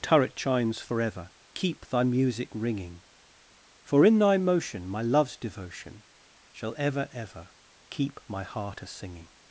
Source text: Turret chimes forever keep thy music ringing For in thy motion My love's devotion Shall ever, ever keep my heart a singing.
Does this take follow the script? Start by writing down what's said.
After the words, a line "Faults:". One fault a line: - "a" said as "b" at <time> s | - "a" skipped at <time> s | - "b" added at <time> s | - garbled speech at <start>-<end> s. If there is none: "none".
Turret chimes forever keep thy music ringing For in thy motion My love's devotion Shall ever, ever keep my heart a singing.
Faults:
none